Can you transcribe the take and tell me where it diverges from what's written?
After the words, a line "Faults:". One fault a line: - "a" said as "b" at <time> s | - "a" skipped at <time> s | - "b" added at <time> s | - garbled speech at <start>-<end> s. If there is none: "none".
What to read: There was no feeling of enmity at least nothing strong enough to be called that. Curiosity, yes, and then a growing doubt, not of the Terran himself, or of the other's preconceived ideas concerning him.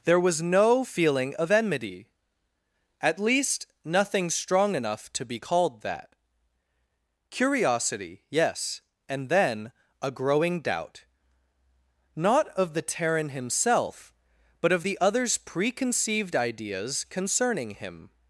There was no feeling of enmity at least nothing strong enough to be called that. Curiosity, yes, and then a growing doubt, not of the Terran himself, but of the other's preconceived ideas concerning him.
Faults:
- "or" said as "but" at 14.6 s